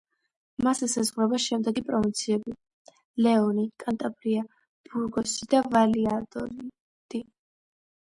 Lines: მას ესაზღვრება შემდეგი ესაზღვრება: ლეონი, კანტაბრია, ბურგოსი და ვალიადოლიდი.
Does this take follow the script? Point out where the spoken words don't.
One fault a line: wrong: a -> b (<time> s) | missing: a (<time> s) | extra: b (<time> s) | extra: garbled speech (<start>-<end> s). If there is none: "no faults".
wrong: ესაზღვრება -> პროვინციები (1.9 s)